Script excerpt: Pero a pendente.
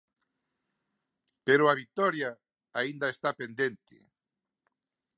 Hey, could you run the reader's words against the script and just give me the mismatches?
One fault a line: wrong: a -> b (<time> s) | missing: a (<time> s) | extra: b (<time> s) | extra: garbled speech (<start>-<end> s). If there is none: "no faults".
extra: vitoria aínda está (1.8 s)